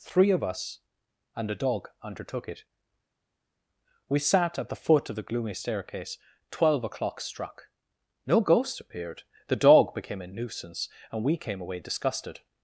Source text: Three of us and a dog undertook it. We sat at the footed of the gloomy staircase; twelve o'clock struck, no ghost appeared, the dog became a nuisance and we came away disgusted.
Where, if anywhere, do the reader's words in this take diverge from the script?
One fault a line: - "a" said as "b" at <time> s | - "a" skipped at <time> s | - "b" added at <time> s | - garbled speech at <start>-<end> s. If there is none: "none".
- "footed" said as "foot" at 4.8 s